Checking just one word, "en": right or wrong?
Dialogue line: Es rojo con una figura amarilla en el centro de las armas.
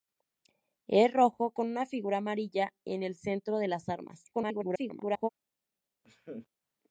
right